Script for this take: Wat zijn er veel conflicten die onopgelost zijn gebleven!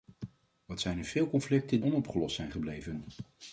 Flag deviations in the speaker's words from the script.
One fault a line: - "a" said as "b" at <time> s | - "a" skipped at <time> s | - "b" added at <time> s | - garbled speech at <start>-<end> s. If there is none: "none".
- "die" skipped at 1.8 s